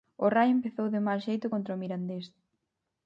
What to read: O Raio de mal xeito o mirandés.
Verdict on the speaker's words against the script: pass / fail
fail